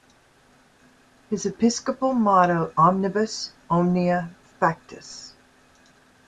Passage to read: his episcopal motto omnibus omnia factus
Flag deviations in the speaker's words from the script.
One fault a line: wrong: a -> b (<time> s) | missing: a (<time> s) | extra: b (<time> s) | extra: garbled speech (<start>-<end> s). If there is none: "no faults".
no faults